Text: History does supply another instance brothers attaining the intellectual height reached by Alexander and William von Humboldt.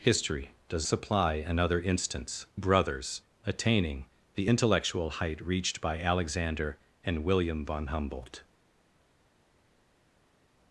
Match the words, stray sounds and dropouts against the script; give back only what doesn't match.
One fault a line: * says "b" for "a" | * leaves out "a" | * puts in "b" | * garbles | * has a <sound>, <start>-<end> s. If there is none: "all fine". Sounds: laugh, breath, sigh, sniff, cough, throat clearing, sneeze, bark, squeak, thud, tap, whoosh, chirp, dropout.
all fine